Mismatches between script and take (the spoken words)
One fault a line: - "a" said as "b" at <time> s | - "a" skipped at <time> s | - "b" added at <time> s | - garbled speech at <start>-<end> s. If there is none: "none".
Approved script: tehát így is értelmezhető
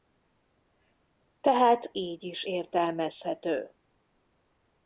none